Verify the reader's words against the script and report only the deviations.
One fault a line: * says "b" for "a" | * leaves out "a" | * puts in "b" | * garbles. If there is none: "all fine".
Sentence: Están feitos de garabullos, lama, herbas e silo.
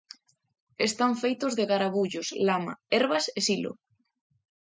all fine